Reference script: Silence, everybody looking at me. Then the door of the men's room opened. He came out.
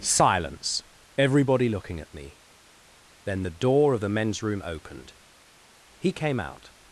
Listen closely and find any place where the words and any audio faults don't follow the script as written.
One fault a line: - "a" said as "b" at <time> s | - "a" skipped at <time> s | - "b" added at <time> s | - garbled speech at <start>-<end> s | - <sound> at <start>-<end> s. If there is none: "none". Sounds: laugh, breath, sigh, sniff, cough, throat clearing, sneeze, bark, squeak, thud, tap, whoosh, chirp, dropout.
none